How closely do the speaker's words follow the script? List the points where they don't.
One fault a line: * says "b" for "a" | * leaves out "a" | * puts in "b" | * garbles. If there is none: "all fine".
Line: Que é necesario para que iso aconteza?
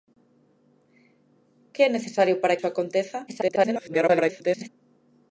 * leaves out "que"
* garbles